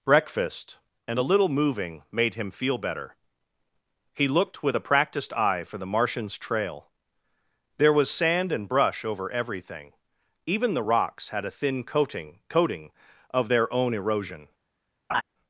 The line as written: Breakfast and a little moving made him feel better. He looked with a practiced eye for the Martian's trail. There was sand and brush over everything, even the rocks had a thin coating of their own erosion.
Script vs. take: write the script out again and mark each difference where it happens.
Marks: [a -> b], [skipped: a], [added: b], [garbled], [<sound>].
Breakfast and a little moving made him feel better. He looked with a practiced eye for the Martian's trail. There was sand and brush over everything, even the rocks had a thin coating [added: coating] of their own erosion. [laugh]